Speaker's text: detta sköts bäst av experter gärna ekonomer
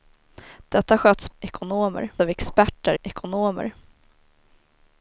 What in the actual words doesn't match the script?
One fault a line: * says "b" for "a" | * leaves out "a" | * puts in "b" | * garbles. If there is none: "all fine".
* says "ekonomer" for "bäst"
* leaves out "gärna"